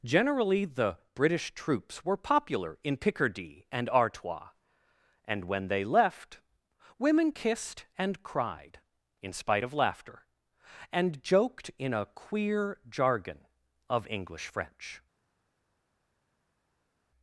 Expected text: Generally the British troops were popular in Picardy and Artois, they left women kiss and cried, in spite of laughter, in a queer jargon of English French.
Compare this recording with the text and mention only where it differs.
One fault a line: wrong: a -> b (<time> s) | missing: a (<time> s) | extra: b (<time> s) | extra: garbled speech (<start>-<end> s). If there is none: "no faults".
extra: and when (5.2 s)
wrong: kiss -> kissed (7.3 s)
extra: and joked (10.9 s)